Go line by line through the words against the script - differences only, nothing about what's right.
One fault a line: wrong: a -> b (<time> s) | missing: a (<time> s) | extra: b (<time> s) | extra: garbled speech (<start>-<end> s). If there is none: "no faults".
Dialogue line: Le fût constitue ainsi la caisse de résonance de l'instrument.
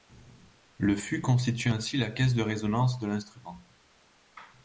no faults